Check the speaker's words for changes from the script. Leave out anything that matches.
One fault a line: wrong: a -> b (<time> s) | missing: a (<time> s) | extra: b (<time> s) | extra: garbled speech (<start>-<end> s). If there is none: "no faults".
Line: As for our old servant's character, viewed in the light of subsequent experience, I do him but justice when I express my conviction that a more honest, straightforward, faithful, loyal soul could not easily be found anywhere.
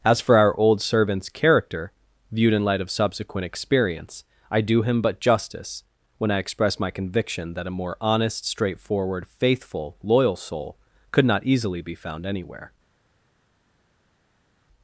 missing: the (2.6 s)